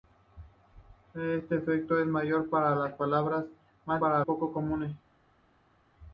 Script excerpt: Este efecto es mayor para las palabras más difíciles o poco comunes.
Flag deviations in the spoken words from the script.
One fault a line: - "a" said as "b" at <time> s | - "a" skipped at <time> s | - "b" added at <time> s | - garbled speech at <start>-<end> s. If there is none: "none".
- "difíciles" said as "para" at 4.0 s